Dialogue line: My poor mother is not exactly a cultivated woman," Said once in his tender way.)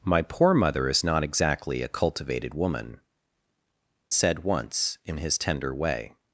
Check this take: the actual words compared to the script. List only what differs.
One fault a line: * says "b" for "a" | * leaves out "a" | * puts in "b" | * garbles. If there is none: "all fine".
all fine